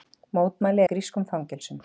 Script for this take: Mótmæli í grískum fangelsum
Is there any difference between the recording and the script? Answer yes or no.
no